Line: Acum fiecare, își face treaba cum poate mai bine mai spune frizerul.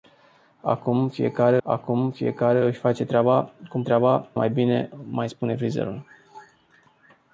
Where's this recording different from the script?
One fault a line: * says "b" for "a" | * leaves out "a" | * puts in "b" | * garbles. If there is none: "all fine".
* puts in "acum fiecare"
* says "treaba" for "poate"